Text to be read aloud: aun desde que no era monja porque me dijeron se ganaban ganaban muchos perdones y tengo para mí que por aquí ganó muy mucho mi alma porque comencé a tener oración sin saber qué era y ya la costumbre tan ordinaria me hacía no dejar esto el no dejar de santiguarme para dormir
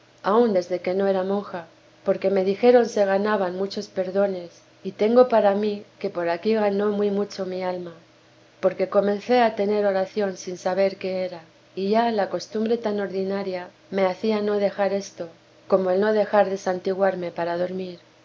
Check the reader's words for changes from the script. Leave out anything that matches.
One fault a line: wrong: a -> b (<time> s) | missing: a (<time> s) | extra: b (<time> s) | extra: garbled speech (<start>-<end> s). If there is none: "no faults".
missing: ganaban (3.6 s)
extra: como (15.7 s)